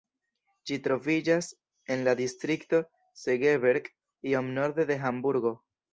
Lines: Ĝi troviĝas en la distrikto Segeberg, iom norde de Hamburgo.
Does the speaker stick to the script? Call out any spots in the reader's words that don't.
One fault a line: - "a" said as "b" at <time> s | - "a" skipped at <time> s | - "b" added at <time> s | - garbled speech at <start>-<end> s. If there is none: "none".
none